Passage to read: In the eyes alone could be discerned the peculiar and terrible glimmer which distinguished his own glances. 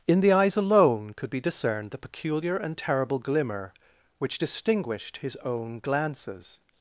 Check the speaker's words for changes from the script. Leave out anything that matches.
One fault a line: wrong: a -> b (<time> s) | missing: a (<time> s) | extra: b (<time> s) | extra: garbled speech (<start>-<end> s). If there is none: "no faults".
no faults